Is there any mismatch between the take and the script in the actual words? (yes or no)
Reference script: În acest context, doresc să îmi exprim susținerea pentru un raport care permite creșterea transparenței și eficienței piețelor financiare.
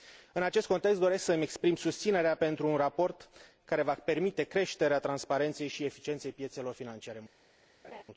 yes